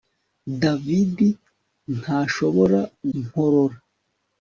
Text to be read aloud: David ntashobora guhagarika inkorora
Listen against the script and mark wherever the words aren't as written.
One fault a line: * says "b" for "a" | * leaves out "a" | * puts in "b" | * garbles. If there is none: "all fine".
* leaves out "guhagarika"